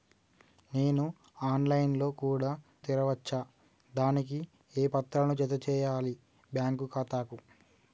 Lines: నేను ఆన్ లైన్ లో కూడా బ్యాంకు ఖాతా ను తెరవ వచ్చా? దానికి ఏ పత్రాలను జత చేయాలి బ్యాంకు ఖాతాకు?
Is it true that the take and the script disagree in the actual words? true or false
true